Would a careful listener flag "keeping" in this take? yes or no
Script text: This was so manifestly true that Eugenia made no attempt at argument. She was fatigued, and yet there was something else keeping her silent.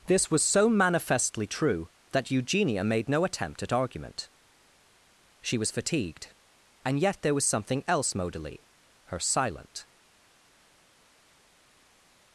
yes